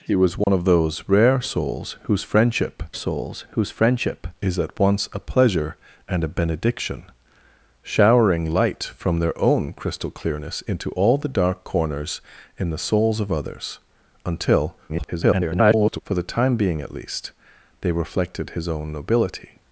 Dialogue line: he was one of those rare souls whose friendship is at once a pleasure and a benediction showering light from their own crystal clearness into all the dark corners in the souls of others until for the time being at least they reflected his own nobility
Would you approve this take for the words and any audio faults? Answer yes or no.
no